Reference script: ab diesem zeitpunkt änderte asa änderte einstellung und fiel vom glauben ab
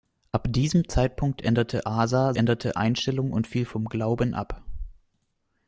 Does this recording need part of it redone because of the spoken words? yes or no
no